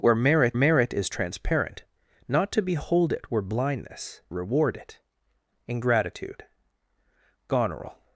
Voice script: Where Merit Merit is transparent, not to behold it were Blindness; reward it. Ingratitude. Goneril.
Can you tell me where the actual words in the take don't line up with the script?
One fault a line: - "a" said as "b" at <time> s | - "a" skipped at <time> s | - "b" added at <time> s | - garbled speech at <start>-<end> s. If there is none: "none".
none